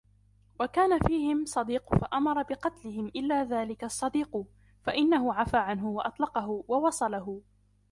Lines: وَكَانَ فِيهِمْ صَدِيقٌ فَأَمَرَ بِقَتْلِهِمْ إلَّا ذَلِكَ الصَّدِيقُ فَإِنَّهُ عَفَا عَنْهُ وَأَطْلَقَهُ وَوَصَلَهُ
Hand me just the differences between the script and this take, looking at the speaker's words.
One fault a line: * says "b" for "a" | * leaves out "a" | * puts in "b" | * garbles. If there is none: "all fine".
all fine